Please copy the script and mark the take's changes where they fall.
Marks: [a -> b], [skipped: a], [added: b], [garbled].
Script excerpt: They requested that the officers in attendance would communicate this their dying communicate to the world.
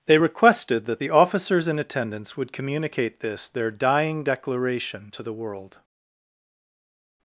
They requested that the officers in attendance would communicate this their dying [communicate -> declaration] to the world.